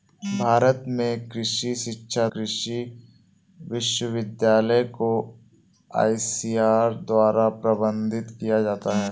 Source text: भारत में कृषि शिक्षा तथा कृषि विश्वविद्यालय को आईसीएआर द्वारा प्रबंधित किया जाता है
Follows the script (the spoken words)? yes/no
no